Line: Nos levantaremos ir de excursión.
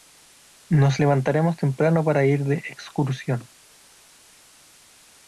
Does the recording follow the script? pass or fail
fail